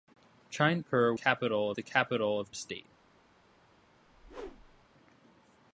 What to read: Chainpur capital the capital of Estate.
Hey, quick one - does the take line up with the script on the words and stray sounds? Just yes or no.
no